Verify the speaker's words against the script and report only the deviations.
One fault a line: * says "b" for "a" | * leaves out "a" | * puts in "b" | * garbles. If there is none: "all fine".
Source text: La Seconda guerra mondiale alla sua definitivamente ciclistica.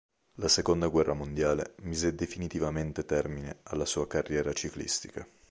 * puts in "mise definitivamente termine"
* says "carriera" for "definitivamente"